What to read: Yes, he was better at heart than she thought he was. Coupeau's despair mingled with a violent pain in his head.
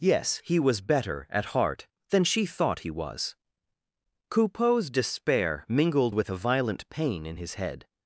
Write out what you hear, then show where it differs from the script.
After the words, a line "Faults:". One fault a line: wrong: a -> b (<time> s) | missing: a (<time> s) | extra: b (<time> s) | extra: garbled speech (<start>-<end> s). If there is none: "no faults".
Yes, he was better at heart than she thought he was. Coupeau's despair mingled with a violent pain in his head.
Faults:
no faults